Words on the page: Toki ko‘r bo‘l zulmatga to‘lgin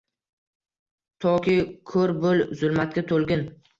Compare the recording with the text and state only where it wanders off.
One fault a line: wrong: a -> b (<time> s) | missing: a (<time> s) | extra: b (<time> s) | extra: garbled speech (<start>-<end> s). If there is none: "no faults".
no faults